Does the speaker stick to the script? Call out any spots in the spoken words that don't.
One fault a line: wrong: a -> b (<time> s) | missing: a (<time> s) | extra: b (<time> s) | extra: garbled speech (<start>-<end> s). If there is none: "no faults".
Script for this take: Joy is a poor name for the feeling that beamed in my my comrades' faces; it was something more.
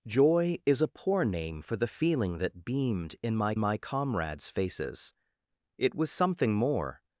no faults